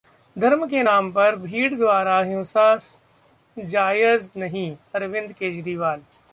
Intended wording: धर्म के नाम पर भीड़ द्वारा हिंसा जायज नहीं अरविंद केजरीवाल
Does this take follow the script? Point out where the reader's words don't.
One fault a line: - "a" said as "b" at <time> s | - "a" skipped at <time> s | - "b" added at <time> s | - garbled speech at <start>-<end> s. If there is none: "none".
none